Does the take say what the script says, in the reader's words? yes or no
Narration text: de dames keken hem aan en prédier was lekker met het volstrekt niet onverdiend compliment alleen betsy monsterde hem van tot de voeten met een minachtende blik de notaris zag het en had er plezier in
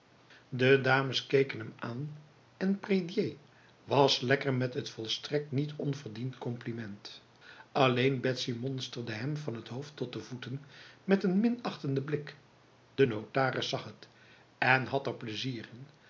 no